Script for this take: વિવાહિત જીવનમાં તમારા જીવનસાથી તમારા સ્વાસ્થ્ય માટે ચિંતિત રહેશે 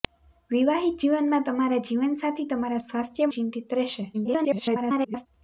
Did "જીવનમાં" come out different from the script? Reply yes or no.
no